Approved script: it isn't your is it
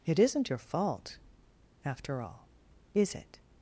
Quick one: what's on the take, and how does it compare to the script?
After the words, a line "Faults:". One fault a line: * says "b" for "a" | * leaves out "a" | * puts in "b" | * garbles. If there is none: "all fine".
it isn't your fault after all is it
Faults:
* puts in "fault after all"